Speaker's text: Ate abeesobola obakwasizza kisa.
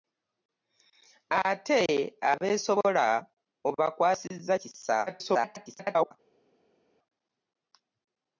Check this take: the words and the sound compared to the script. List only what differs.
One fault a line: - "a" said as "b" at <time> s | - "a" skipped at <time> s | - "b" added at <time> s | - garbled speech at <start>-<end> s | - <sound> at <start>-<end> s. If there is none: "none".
- garbled speech at 5.1-6.1 s